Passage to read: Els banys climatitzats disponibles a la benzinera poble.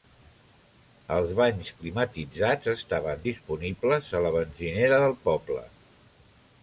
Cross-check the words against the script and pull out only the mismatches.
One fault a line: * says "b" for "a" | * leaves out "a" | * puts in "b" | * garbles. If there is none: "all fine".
* puts in "estaven"
* puts in "del"